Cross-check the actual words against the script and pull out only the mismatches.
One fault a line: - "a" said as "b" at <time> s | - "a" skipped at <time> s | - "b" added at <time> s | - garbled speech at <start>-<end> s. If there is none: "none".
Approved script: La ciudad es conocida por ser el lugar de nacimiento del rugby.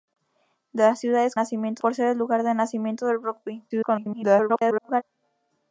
- "conocida" said as "nacimiento" at 1.3 s
- garbled speech at 3.7-5.0 s